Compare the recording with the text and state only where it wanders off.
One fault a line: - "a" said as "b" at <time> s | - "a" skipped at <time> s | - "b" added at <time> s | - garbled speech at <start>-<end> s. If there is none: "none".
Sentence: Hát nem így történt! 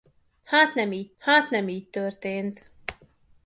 - "hát nem így" added at 1.2 s